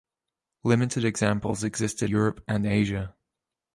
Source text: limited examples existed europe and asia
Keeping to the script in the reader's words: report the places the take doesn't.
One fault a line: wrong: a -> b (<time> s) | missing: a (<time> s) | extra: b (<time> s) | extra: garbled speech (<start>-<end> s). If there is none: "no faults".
no faults